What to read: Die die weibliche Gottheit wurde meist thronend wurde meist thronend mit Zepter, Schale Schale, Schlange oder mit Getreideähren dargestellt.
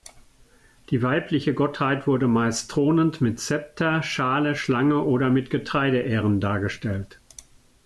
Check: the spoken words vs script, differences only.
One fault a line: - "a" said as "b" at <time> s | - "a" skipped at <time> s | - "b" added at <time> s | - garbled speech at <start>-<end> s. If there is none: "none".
- "die" skipped at 1.0 s
- "wurde meist thronend" skipped at 3.2 s
- "Schale" skipped at 4.5 s